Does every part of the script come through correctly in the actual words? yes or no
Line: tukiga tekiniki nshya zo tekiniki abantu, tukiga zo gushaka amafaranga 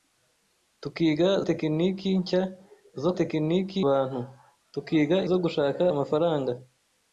yes